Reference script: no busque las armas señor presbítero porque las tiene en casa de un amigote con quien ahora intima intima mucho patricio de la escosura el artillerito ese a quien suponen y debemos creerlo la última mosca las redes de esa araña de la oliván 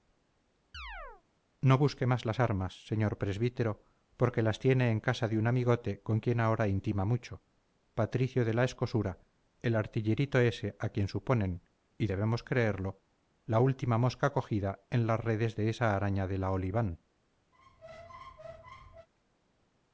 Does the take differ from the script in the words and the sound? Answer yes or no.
yes